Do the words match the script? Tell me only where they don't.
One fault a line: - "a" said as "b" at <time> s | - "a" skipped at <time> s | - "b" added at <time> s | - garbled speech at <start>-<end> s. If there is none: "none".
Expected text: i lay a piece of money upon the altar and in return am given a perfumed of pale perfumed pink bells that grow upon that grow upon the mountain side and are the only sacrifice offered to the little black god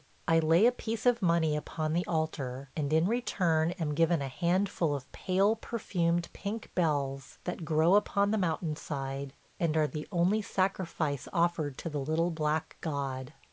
- "perfumed" said as "handful" at 4.3 s
- "that grow upon" skipped at 8.3 s